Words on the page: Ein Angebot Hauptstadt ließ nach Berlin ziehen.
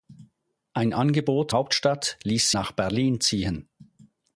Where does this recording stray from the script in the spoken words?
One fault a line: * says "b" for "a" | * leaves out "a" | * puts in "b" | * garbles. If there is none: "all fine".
all fine